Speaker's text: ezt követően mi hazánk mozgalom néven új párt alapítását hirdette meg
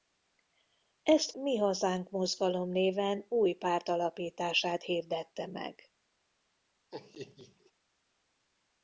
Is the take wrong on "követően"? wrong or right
wrong